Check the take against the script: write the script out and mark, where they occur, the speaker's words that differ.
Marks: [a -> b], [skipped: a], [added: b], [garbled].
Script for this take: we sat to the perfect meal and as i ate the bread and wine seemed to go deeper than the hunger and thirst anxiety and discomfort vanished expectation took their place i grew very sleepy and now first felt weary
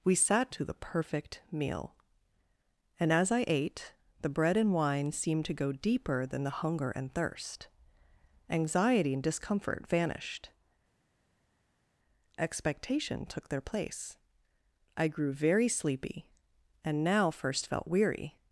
we sat to the perfect meal and as i ate the bread and wine seemed to go deeper than the hunger and thirst anxiety and discomfort vanished expectation took their place i grew very sleepy and now first felt weary